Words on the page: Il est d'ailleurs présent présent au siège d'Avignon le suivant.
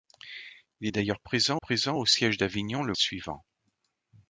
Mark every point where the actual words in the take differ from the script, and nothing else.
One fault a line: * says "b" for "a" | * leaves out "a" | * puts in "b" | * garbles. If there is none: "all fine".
all fine